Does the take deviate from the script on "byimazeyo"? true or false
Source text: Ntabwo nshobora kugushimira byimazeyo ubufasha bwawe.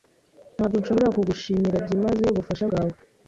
false